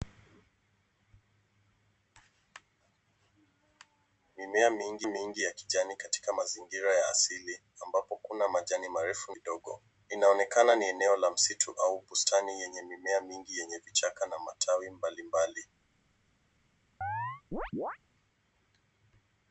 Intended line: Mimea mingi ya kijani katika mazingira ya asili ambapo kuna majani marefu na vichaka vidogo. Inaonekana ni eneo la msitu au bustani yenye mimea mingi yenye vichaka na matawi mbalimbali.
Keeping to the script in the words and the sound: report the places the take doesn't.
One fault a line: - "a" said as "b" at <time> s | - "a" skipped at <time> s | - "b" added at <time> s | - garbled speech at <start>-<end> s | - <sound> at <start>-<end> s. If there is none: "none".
- "mingi" added at 5.0 s
- "na vichaka" skipped at 9.3 s
- chirp at 17.0-18.0 s